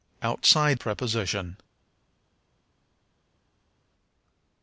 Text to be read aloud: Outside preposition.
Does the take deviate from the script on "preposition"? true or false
false